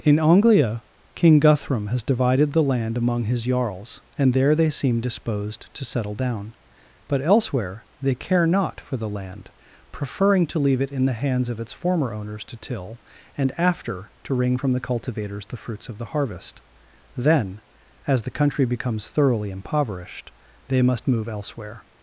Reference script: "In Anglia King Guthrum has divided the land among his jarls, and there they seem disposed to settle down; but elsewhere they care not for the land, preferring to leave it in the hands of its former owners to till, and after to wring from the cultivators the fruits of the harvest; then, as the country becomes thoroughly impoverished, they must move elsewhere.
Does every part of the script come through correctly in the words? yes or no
yes